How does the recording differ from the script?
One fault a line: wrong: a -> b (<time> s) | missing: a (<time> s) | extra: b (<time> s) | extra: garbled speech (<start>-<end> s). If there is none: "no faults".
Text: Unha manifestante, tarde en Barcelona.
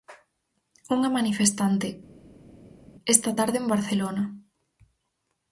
extra: esta (3.1 s)